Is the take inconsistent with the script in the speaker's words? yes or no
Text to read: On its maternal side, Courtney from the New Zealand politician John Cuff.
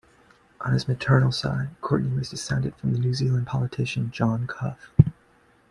yes